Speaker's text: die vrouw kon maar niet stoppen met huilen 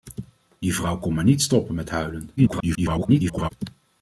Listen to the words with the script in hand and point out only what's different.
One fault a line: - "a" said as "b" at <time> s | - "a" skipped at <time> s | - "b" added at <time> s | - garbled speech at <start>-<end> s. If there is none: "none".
- garbled speech at 2.4-3.5 s